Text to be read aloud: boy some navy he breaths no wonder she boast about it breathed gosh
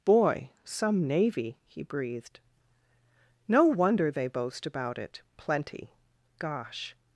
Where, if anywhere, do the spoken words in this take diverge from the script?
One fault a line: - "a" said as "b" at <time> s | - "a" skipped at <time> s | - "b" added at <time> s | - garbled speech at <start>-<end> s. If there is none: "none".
- "breaths" said as "breathed" at 1.8 s
- "she" said as "they" at 4.1 s
- "breathed" said as "plenty" at 5.4 s